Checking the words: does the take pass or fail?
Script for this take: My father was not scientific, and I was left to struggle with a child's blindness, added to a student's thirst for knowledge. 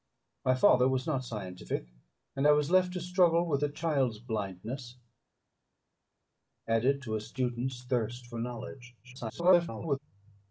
fail